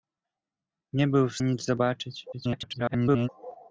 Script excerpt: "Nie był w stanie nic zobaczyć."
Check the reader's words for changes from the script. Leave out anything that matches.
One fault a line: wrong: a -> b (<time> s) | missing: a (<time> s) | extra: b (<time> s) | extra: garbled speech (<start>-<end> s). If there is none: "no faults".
missing: stanie (1.4 s)
extra: garbled speech (2.3-3.3 s)